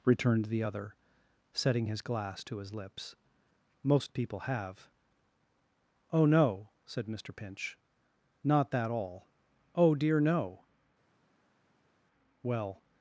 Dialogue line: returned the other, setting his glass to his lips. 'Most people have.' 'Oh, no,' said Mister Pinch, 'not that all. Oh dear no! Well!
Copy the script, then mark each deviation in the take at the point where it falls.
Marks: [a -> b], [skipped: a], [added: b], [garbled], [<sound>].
returned the other, setting his glass to his lips. 'Most people have.' 'Oh, no,' said Mister Pinch, 'not that all. Oh dear no! Well!